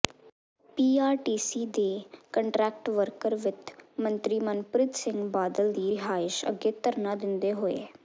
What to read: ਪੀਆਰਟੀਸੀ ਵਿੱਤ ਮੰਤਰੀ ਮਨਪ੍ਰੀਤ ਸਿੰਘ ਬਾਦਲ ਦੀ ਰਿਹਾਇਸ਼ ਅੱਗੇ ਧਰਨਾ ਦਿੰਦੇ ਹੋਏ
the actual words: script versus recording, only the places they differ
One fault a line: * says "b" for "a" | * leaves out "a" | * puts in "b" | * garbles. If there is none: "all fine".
* puts in "ਦੇ ਕੰਟਰੈਕਟ ਵਰਕਰ"